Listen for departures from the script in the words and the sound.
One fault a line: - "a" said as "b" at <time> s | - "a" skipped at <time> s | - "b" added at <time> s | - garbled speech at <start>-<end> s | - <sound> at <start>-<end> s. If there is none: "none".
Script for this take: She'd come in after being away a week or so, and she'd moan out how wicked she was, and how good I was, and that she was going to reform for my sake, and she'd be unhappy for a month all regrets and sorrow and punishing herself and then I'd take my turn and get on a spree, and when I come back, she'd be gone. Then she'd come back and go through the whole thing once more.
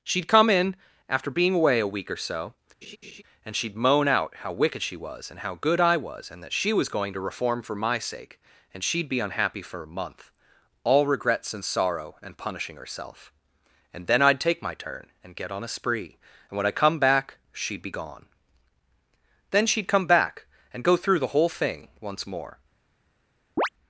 - laugh at 2.8-3.2 s
- chirp at 23.6-23.7 s